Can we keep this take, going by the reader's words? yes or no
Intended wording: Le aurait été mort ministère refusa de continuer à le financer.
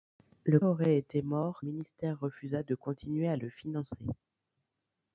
yes